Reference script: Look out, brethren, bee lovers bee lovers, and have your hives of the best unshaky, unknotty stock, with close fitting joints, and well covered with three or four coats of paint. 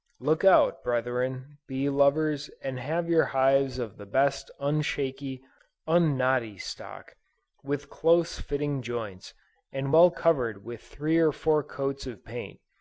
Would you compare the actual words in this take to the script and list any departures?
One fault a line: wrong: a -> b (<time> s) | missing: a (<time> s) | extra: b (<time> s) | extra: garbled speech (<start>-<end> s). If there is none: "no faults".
missing: bee lovers (2.5 s)